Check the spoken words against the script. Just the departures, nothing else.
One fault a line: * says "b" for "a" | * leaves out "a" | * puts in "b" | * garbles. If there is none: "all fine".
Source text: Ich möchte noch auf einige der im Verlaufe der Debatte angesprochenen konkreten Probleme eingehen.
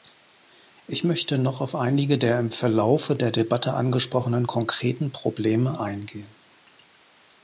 all fine